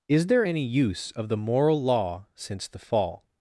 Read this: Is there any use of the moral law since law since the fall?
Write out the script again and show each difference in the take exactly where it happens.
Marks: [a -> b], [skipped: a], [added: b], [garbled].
Is there any use of the moral law since [skipped: law since] the fall?